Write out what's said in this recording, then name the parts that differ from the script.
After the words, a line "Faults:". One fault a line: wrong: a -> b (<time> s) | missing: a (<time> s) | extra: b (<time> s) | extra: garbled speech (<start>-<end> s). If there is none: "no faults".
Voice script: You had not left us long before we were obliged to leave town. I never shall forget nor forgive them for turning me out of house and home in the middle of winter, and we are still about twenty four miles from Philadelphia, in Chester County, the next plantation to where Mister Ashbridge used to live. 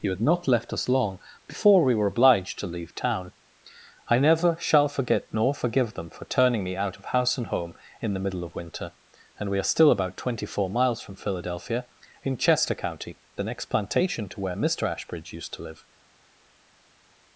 You had not left us long before we were obliged to leave town. I never shall forget nor forgive them for turning me out of house and home in the middle of winter, and we are still about twenty four miles from Philadelphia, in Chester County, the next plantation to where Mister Ashbridge used to live.
Faults:
no faults